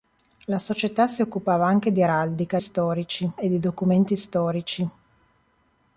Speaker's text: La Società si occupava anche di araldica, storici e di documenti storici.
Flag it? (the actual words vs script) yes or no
no